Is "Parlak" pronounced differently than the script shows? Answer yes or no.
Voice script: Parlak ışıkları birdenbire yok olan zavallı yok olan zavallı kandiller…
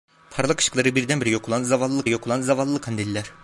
no